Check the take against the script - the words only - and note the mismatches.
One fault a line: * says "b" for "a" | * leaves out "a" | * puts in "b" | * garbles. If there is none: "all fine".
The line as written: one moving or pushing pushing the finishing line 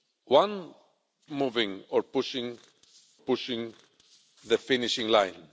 all fine